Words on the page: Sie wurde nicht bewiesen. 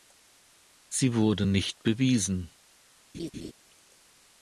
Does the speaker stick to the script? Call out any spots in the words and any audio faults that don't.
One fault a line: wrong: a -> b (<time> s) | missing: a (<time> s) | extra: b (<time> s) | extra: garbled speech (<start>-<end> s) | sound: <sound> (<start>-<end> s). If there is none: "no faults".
sound: laugh (3.1-3.5 s)